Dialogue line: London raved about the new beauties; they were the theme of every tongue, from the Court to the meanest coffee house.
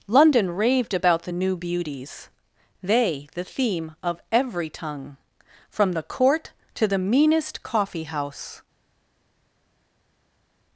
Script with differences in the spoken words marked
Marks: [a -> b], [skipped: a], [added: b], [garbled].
London raved about the new beauties; they [skipped: were] the theme of every tongue, from the Court to the meanest coffee house.